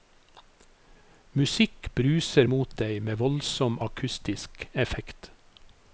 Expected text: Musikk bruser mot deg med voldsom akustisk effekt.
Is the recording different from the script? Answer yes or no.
no